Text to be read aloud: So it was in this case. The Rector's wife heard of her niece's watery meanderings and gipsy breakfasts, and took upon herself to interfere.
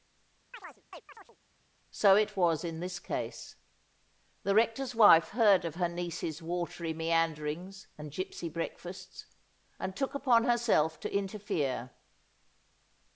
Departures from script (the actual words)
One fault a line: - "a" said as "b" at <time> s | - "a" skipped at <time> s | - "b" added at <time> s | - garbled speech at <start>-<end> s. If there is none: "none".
none